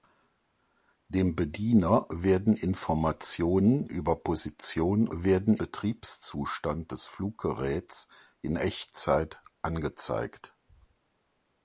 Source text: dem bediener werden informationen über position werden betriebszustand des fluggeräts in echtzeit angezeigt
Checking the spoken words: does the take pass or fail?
pass